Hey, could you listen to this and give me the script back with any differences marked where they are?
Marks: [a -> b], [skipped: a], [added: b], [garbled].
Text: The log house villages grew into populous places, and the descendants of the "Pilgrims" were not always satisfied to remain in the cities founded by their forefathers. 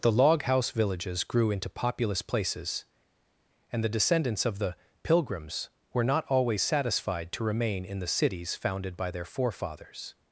The log house villages grew into populous places, and the descendants of the "Pilgrims" were not always satisfied to remain in the cities founded by their forefathers.